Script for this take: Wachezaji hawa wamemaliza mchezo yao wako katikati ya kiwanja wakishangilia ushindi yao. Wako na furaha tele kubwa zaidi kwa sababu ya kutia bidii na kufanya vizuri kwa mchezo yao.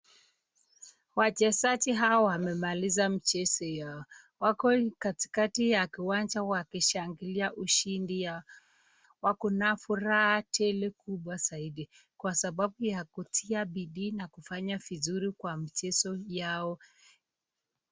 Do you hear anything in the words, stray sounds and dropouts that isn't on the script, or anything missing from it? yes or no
no